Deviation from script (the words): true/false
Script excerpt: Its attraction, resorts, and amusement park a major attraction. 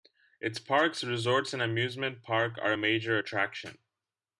true